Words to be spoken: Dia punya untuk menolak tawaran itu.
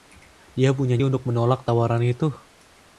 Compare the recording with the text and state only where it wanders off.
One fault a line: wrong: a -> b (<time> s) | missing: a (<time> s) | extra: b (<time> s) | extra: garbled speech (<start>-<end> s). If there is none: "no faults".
no faults